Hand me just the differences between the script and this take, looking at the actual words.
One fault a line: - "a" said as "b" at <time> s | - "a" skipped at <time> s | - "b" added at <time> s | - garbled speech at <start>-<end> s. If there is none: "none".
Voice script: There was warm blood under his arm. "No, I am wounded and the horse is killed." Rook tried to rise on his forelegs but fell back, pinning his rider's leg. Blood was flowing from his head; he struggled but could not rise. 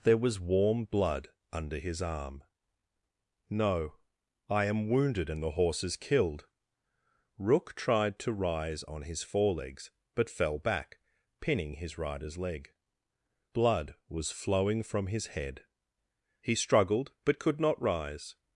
none